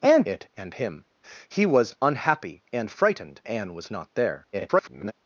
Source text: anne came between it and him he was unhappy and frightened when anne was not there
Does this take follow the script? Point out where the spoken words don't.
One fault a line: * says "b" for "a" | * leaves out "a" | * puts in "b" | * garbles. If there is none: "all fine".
* leaves out "came between"
* leaves out "when"
* garbles